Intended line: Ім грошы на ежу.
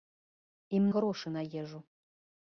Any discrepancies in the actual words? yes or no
no